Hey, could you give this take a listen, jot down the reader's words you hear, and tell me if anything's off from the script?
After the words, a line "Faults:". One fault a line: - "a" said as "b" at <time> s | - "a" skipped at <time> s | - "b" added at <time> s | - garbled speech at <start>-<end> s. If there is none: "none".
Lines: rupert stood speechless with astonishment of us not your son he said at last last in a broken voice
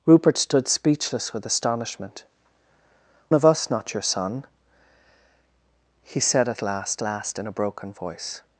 rupert stood speechless with astonishment of us not your son he said at last last in a broken voice
Faults:
none